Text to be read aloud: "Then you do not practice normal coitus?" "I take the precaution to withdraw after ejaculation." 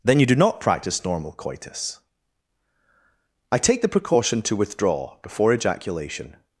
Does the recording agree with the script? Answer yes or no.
no